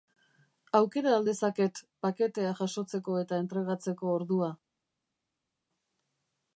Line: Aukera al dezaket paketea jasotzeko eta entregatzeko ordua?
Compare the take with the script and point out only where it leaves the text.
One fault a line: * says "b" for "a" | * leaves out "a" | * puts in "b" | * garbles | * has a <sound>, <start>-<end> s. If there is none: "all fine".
all fine